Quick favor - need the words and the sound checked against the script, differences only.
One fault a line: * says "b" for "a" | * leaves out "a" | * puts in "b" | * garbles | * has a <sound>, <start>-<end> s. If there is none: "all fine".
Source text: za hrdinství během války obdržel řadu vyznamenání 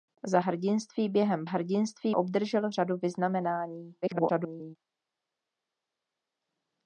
* says "hrdinství" for "války"
* garbles